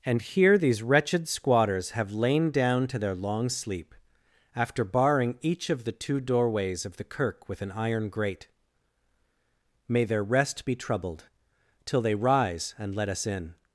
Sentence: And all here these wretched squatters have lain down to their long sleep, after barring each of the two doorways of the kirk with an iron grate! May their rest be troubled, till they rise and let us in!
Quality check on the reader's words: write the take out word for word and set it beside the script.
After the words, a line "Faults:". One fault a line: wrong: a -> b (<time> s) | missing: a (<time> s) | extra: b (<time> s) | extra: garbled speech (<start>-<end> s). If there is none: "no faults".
And here these wretched squatters have lain down to their long sleep, after barring each of the two doorways of the kirk with an iron grate! May their rest be troubled, till they rise and let us in!
Faults:
missing: all (0.2 s)